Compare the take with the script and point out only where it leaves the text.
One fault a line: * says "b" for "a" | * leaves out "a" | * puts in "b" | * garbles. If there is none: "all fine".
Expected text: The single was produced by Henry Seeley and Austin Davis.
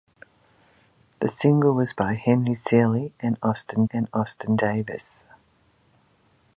* leaves out "produced"
* puts in "and Austin"